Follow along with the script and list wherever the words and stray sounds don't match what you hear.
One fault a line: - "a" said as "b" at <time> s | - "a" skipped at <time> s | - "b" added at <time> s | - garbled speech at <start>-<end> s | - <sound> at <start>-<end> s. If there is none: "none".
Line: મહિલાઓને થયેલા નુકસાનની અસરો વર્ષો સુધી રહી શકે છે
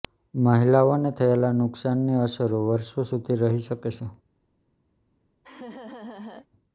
- laugh at 5.4-6.5 s